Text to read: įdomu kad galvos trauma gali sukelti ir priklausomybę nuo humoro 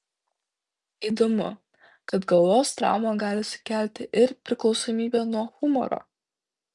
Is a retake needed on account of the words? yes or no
no